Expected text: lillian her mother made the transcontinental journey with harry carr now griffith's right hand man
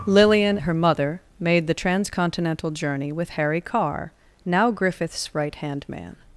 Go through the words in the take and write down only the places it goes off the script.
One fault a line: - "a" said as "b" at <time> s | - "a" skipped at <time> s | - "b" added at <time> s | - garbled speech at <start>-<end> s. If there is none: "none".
none